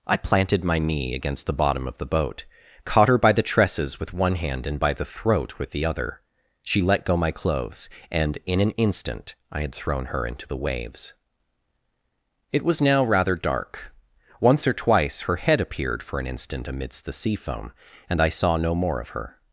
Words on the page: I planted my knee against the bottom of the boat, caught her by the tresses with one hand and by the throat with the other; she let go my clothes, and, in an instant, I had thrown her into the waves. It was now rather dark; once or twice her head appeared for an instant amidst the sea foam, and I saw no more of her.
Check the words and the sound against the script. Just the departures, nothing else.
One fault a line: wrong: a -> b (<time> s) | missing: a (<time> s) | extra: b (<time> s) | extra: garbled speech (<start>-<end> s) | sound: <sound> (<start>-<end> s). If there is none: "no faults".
no faults